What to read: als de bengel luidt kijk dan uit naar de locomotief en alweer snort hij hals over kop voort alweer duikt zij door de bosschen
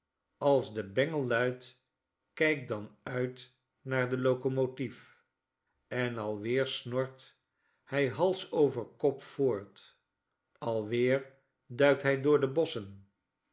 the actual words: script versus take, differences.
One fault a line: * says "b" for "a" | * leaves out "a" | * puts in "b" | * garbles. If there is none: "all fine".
* says "hij" for "zij"